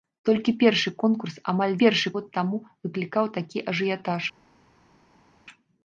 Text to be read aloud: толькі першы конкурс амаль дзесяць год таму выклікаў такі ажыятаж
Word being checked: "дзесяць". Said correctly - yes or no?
no